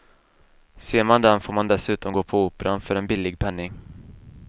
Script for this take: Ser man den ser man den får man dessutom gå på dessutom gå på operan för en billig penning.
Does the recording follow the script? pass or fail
fail